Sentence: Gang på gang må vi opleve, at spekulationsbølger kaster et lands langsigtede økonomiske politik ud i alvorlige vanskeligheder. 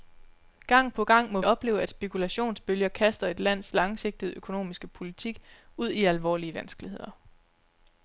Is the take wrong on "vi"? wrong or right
wrong